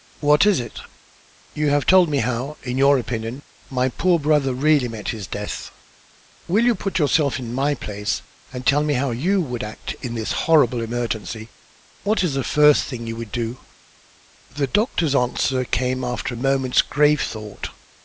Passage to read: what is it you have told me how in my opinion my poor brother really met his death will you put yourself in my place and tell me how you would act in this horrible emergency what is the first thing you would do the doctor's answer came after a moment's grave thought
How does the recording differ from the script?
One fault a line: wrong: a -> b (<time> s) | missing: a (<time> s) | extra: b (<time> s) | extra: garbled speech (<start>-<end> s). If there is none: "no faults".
wrong: my -> your (2.8 s)